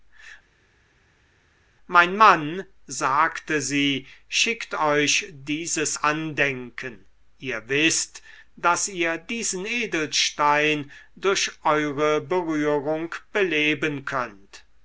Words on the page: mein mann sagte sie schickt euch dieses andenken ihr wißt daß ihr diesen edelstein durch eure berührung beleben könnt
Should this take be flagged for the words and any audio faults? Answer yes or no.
no